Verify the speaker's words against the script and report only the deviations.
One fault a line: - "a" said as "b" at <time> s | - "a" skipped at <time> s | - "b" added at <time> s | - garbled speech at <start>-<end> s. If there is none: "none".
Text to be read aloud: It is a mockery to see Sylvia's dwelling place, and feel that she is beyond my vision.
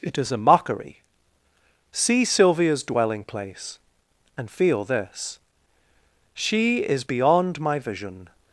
- "to" skipped at 1.0 s
- "that" said as "this" at 4.8 s